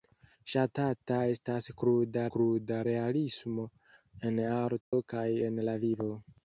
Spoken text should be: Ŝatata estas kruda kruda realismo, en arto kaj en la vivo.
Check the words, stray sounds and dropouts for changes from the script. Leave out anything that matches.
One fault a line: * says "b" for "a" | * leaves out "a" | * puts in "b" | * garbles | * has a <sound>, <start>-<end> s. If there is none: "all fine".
* has a dropout, 4.8-4.9 s